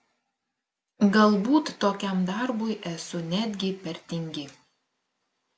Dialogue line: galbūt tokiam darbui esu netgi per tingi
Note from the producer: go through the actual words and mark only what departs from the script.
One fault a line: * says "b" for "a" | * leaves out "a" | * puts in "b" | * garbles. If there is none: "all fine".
all fine